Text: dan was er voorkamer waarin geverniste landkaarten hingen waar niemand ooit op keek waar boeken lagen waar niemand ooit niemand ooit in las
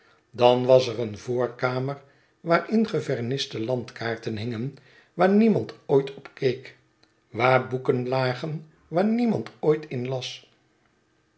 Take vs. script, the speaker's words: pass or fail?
fail